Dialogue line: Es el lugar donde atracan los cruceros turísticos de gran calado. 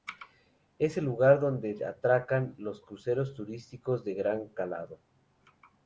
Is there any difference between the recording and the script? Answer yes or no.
no